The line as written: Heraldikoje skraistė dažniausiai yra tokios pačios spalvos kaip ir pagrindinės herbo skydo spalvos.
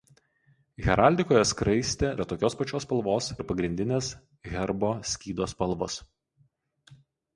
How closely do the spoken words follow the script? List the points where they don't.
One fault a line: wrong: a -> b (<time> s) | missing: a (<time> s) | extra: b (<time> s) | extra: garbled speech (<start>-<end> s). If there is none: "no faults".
missing: dažniausiai (2.1 s)
missing: kaip (3.3 s)